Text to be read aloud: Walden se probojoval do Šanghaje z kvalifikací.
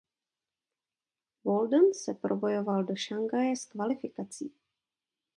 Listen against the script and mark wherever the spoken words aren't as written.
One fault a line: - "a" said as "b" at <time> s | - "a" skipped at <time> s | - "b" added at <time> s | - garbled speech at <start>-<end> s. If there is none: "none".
none